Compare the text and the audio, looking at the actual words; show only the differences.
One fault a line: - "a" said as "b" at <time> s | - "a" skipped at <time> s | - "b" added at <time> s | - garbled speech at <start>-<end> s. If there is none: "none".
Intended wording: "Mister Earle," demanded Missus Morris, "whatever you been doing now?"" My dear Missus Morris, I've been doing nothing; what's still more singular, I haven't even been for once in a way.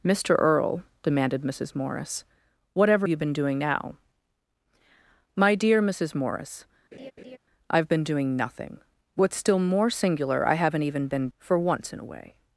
none